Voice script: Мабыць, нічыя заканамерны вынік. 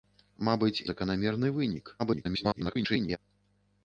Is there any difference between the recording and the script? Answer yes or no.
yes